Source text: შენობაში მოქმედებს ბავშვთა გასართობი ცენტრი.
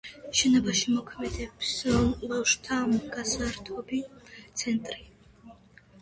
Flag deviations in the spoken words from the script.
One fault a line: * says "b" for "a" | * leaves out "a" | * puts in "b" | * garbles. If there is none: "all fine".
all fine